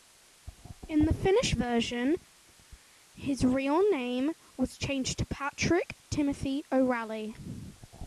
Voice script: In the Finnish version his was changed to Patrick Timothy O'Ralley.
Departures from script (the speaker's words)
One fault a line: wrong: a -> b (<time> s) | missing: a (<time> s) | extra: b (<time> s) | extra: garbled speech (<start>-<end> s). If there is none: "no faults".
extra: real name (3.4 s)